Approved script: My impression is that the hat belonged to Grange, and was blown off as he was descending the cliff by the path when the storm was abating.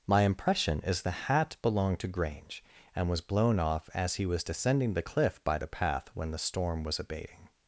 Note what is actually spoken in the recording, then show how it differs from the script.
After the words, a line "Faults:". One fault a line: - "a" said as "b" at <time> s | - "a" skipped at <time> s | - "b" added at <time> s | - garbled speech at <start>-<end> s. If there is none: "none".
My impression is the hat belonged to Grange, and was blown off as he was descending the cliff by the path when the storm was abating.
Faults:
- "that" skipped at 1.0 s